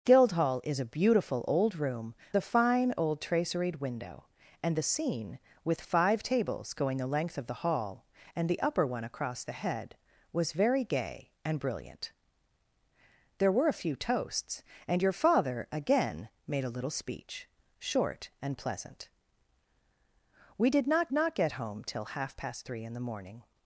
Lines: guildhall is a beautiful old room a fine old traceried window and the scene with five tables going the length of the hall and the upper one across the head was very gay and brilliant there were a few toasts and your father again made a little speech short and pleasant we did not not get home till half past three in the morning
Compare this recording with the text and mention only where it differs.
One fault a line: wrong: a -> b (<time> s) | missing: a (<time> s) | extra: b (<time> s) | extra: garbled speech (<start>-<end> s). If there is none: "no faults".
no faults